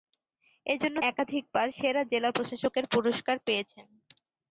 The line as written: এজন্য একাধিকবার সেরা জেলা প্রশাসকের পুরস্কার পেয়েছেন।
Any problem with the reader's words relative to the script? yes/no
no